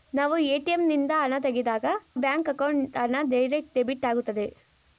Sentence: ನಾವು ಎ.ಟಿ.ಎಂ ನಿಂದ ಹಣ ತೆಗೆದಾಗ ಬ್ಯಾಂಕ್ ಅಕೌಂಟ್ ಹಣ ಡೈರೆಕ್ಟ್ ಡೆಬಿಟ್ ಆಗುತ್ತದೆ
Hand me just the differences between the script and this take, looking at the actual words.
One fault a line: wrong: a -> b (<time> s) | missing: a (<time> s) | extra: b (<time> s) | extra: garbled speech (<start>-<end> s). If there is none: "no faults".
no faults